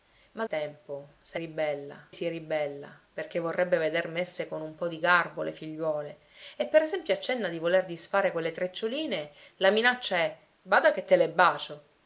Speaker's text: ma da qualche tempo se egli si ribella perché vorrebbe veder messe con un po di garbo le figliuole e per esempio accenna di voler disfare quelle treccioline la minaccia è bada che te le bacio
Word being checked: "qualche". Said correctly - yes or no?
no